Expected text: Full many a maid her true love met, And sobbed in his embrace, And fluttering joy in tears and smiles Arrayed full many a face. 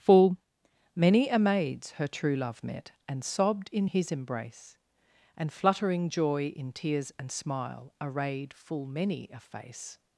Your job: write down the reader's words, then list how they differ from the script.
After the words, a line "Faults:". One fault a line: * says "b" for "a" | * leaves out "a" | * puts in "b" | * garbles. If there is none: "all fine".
Full many a maids her true love met, And sobbed in his embrace, And fluttering joy in tears and smile Arrayed full many a face.
Faults:
* says "maids" for "maid"
* says "smile" for "smiles"